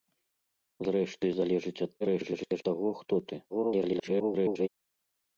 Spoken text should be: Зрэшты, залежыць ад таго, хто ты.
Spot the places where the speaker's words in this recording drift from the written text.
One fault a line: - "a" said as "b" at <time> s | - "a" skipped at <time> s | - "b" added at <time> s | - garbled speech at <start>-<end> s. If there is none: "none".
- garbled speech at 2.0-2.6 s
- garbled speech at 3.5-4.7 s